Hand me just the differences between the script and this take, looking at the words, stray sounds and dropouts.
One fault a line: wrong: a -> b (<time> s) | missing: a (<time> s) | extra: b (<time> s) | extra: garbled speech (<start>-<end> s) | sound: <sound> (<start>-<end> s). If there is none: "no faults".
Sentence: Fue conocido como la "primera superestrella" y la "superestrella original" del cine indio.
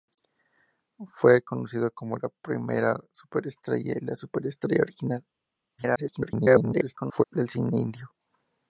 extra: garbled speech (5.8-7.2 s)